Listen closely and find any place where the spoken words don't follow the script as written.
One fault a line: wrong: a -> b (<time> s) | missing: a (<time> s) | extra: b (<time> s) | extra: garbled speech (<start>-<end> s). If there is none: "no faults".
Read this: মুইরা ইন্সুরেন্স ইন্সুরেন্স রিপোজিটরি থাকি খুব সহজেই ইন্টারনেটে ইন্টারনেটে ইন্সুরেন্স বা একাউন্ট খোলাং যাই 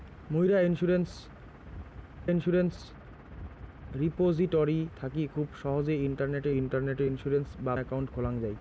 no faults